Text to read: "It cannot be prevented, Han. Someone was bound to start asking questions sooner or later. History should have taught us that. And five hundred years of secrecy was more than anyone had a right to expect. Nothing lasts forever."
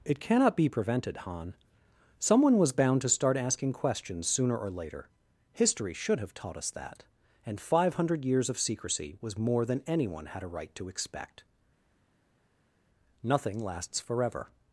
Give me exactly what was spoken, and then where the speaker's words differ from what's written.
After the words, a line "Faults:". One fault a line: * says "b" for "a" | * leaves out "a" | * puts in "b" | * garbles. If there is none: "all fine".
"It cannot be prevented, Han. Someone was bound to start asking questions sooner or later. History should have taught us that. And five hundred years of secrecy was more than anyone had a right to expect. Nothing lasts forever."
Faults:
all fine